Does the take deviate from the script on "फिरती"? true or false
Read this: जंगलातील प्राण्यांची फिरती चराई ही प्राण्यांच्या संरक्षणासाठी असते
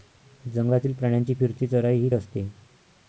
false